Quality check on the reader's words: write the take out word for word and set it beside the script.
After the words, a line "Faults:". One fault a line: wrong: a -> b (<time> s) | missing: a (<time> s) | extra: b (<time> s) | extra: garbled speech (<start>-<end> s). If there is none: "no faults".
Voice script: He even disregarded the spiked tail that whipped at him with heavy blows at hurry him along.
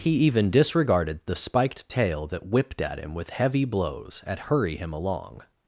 He even disregarded the spiked tail that whipped at him with heavy blows at hurry him along.
Faults:
no faults